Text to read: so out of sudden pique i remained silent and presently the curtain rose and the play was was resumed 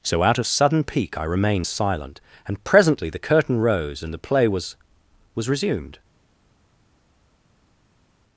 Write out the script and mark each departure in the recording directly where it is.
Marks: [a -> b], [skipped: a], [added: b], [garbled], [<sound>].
so out of sudden pique i remained silent and presently the curtain rose and the play was was resumed